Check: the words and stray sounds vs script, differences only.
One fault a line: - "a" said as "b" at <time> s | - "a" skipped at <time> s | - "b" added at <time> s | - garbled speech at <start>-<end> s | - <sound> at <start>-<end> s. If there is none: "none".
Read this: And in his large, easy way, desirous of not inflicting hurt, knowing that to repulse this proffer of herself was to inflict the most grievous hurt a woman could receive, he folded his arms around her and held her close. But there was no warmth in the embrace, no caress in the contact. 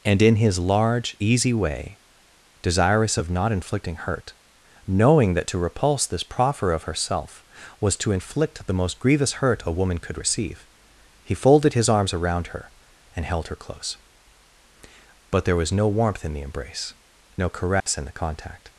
- dropout at 17.8-17.9 s